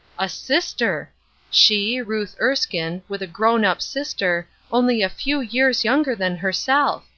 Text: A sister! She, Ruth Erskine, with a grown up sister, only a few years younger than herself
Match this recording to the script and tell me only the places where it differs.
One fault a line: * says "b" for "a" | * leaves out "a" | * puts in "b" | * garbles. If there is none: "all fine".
all fine